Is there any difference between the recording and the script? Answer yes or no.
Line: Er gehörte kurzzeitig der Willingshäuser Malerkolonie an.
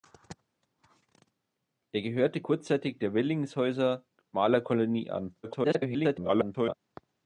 yes